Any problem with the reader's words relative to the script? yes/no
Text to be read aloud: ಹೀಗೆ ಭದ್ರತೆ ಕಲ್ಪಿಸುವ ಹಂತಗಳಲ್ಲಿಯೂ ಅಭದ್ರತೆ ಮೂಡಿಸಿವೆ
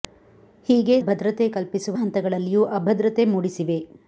no